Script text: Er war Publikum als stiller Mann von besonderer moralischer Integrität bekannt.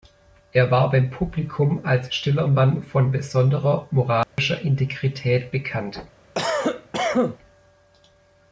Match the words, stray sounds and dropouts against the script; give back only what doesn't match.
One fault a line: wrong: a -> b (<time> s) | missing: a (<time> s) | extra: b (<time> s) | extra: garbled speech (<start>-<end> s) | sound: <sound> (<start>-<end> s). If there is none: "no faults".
extra: beim (0.9 s)
sound: dropout (4.2-4.4 s)
sound: cough (6.3-7.4 s)